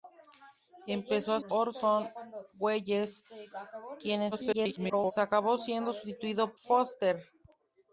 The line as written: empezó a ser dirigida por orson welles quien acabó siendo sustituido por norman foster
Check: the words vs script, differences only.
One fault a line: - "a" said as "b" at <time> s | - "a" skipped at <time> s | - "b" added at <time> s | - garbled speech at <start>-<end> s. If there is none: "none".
- "ser dirigida por" skipped at 1.4 s
- garbled speech at 4.3-5.1 s
- "por norman" skipped at 6.5 s